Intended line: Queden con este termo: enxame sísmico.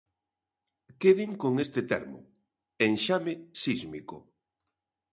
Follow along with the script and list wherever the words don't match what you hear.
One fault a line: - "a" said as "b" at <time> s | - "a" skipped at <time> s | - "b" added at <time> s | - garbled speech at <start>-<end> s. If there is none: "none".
none